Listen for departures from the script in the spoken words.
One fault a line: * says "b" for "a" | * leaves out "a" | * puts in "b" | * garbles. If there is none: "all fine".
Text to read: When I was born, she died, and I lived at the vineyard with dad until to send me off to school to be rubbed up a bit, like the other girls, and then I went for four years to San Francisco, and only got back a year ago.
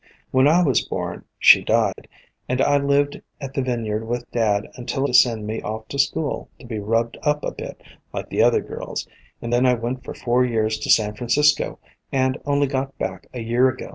all fine